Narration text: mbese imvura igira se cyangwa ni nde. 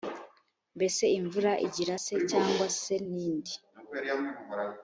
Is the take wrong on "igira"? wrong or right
right